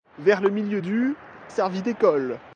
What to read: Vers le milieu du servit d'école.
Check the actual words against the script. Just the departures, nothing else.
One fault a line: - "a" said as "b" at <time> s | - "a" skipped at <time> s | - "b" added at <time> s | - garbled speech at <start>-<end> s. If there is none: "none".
none